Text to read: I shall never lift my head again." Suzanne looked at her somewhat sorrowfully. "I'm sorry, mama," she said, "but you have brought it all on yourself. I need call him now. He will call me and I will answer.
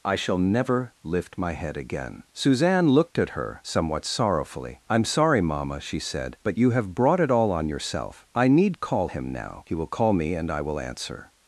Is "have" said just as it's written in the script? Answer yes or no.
yes